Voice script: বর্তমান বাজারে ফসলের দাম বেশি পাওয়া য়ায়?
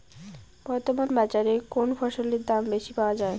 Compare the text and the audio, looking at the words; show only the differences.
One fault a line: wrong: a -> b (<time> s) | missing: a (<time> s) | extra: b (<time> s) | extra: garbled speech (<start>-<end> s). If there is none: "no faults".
extra: কোন (1.7 s)